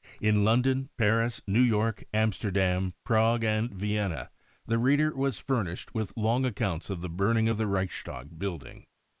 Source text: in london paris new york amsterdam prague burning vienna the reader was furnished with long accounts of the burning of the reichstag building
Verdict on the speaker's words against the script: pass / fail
fail